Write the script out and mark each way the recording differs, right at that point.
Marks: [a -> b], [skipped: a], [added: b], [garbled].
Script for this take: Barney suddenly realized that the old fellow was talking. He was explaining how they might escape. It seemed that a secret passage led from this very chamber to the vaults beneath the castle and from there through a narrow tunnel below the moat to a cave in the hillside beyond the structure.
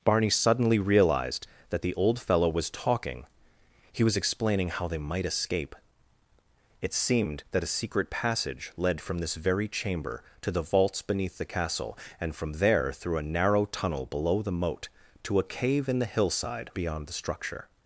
Barney suddenly realized that the old fellow was talking. He was explaining how they might escape. It seemed that a secret passage led from this very chamber to the vaults beneath the castle and from there through a narrow tunnel below the moat to a cave in the hillside beyond the structure.